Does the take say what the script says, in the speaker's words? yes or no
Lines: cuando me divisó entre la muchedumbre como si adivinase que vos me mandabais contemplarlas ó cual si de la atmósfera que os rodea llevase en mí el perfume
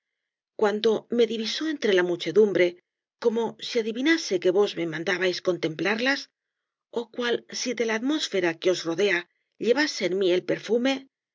yes